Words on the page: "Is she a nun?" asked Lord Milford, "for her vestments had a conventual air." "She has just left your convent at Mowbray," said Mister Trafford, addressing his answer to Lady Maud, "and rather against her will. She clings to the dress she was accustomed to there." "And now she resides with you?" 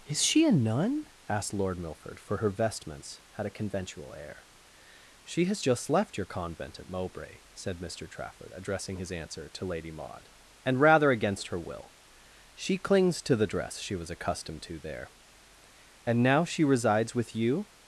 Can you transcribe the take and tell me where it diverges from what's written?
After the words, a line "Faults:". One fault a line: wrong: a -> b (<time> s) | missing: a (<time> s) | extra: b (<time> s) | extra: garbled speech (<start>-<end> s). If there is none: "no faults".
"Is she a nun?" asked Lord Milford, "for her vestments had a conventual air." "She has just left your convent at Mowbray," said Mister Trafford, addressing his answer to Lady Maud, "and rather against her will. She clings to the dress she was accustomed to there." "And now she resides with you?"
Faults:
no faults